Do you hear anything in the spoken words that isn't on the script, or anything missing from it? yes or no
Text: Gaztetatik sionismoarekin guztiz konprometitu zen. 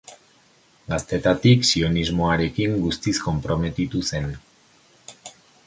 no